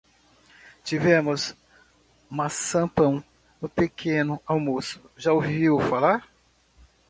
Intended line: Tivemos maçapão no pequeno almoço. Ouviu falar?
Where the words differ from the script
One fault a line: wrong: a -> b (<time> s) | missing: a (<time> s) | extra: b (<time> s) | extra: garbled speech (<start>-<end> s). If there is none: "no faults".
extra: Já (5.2 s)